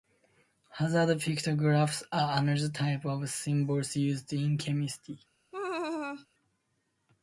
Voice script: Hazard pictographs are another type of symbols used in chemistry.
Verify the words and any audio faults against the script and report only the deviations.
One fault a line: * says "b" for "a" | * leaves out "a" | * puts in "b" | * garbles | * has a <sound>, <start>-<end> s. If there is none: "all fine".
* has a laugh, 5.5-6.3 s